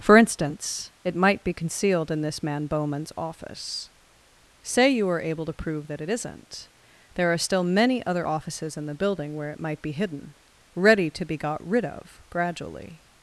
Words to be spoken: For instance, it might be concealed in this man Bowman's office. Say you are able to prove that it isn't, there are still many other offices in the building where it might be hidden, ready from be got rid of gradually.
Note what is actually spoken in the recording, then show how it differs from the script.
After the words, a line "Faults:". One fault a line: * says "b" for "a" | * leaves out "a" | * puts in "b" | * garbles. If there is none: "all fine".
For instance, it might be concealed in this man Bowman's office. Say you are able to prove that it isn't, there are still many other offices in the building where it might be hidden, ready to be got rid of gradually.
Faults:
* says "to" for "from"